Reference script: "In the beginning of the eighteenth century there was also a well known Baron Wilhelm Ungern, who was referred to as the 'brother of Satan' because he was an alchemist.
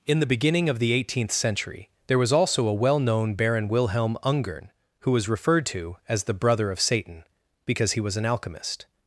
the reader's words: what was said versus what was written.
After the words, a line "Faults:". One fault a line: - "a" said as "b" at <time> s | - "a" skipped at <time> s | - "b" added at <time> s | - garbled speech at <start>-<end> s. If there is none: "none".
"In the beginning of the eighteenth century there was also a well known Baron Wilhelm Ungern, who was referred to as the 'brother of Satan' because he was an alchemist.
Faults:
none